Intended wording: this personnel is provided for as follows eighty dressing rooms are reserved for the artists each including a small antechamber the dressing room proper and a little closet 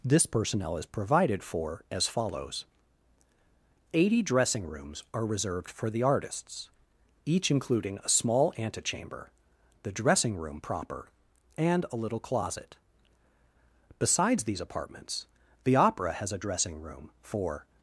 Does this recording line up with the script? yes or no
no